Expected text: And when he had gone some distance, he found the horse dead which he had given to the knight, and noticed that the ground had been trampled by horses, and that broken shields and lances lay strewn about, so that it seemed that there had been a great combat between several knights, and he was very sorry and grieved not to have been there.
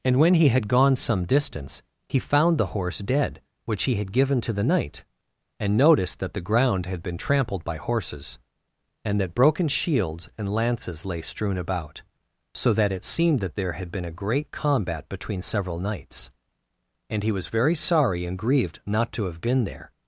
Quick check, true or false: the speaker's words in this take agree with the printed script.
true